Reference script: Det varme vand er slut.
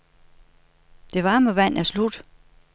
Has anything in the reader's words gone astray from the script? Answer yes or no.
no